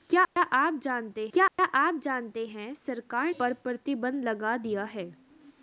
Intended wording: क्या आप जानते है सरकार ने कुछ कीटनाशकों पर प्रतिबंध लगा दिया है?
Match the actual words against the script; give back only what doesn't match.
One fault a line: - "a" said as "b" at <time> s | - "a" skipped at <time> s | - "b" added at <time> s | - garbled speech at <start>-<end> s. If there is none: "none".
- "है सरकार ने कुछ कीटनाशकों" said as "क्या आप जानते है सरकार" at 1.3 s